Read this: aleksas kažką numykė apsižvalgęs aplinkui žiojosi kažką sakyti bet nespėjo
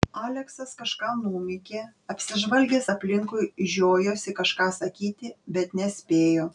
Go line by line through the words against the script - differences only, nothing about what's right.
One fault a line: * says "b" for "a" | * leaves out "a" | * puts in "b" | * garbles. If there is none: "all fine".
all fine